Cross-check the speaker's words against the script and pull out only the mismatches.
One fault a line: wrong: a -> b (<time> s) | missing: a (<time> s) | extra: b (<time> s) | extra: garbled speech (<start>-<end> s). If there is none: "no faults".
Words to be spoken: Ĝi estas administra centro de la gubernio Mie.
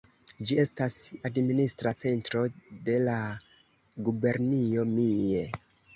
no faults